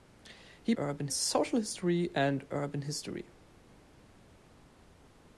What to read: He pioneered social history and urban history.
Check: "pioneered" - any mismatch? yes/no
yes